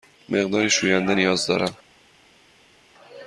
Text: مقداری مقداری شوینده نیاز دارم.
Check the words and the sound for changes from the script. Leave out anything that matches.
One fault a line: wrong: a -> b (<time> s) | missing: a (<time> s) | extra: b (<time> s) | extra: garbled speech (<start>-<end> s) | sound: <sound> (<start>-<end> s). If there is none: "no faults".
missing: مقداری (0.7 s)